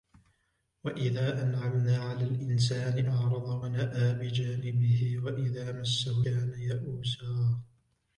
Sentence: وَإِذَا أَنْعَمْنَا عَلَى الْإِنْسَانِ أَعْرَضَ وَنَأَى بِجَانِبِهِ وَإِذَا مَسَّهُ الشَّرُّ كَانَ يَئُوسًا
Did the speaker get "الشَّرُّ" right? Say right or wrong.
wrong